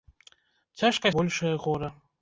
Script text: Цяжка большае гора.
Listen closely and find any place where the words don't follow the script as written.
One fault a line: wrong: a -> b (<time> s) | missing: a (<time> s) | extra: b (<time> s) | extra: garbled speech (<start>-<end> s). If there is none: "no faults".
no faults